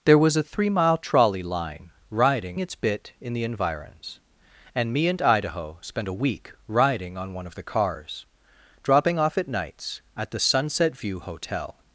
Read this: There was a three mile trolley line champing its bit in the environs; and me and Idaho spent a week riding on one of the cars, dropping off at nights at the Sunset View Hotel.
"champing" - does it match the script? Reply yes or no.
no